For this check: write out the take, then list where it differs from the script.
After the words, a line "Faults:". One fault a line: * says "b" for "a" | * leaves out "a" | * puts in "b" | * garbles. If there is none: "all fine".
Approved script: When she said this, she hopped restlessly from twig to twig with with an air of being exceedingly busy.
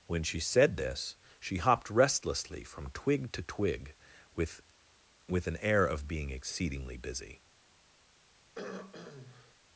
When she said this, she hopped restlessly from twig to twig with with an air of being exceedingly busy.
Faults:
all fine